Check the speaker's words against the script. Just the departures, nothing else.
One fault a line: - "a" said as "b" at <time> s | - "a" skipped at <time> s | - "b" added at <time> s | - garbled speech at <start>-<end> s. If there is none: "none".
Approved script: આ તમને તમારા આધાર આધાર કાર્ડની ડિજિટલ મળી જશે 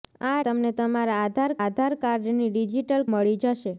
none